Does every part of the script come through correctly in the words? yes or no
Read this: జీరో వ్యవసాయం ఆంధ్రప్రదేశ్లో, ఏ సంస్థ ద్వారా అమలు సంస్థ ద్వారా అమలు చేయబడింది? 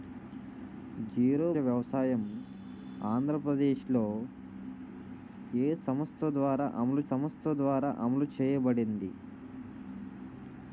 yes